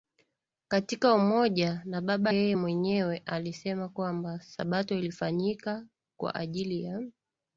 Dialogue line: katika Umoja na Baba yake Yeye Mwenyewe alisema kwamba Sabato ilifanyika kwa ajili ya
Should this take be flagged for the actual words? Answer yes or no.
yes